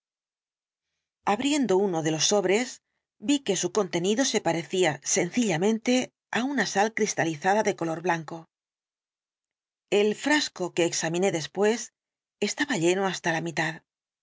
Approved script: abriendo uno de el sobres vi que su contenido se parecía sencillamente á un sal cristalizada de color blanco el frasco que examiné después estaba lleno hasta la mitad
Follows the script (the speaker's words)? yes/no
no